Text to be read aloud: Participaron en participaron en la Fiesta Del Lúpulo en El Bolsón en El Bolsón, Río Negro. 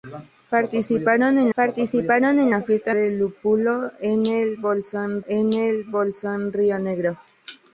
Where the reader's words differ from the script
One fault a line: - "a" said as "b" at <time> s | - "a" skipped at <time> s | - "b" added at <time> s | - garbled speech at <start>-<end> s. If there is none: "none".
none